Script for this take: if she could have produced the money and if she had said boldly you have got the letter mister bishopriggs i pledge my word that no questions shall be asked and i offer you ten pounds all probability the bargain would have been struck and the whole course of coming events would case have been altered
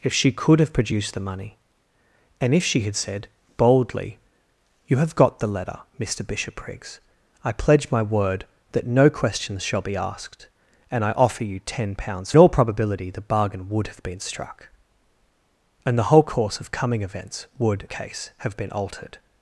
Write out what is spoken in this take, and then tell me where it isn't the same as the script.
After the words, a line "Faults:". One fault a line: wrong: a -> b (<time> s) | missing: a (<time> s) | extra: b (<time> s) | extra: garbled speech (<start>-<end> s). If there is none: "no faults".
if she could have produced the money and if she had said boldly you have got the letter mister bishopriggs i pledge my word that no questions shall be asked and i offer you ten pounds all probability the bargain would have been struck and the whole course of coming events would case have been altered
Faults:
no faults